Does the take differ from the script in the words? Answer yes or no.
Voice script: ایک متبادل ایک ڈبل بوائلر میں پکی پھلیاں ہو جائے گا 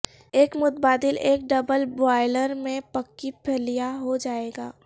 no